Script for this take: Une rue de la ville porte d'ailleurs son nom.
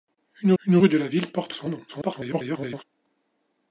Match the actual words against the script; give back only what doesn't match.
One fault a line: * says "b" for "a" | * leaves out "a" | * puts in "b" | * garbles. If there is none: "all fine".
* puts in "une"
* leaves out "d'ailleurs"
* garbles